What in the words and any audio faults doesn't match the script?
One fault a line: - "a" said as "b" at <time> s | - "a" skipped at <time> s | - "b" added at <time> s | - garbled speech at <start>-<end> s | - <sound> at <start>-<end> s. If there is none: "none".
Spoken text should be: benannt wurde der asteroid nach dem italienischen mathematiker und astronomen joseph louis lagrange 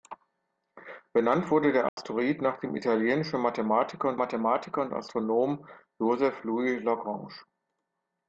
- dropout at 1.9-2.0 s
- "mathematiker und" added at 4.2 s